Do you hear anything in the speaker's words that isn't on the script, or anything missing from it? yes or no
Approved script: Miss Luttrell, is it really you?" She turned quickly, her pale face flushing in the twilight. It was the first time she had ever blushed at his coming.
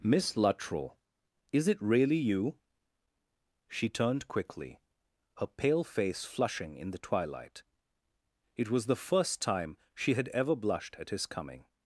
no